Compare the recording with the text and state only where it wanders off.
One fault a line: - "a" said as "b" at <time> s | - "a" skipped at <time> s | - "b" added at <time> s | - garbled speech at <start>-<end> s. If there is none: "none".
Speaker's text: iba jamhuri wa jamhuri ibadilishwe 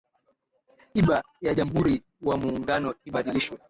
- "ya" added at 1.4 s
- "jamhuri" said as "muungano" at 2.4 s